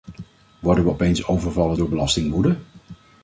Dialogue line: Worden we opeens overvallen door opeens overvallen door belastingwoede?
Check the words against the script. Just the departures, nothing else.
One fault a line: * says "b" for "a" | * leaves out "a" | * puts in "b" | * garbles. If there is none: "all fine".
* leaves out "opeens overvallen door"